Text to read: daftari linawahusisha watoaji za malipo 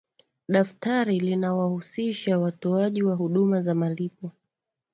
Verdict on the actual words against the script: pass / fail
fail